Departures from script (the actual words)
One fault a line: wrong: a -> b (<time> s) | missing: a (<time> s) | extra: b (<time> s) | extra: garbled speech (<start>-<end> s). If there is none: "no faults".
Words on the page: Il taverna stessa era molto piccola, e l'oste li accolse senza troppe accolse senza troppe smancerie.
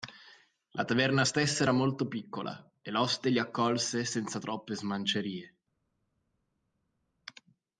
wrong: Il -> La (0.7 s)
missing: accolse senza troppe (4.8 s)